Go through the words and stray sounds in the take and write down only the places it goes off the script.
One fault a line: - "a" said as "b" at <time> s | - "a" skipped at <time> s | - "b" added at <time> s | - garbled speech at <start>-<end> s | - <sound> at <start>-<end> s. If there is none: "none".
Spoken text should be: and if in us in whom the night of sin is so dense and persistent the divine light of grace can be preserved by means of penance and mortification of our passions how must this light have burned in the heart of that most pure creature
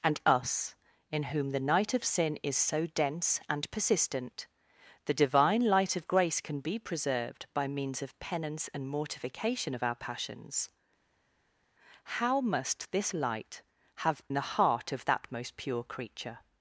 - "if in" skipped at 0.2 s
- "burned in" skipped at 14.2 s